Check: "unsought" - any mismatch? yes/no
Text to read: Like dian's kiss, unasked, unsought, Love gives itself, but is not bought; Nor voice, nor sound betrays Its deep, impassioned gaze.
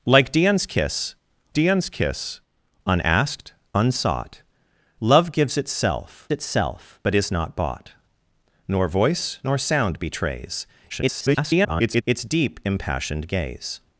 no